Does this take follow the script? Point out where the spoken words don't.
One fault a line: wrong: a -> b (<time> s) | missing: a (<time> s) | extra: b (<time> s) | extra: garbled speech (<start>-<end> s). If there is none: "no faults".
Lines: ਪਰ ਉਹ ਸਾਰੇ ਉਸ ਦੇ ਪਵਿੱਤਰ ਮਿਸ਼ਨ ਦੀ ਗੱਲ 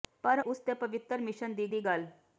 missing: ਉਹ ਸਾਰੇ (0.4 s)
extra: ਦੀ (1.7 s)